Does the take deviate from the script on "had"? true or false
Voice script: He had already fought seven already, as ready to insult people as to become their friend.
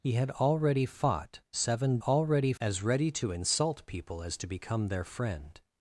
false